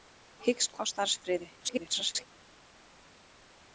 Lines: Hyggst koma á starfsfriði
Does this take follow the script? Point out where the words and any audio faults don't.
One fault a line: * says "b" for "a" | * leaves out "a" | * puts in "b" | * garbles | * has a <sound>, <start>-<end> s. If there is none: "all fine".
* leaves out "koma"
* garbles